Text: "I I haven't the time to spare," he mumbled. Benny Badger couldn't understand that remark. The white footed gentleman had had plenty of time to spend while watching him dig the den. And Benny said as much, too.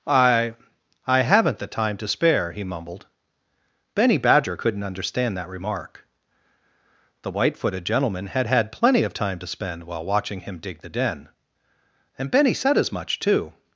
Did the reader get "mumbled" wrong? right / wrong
right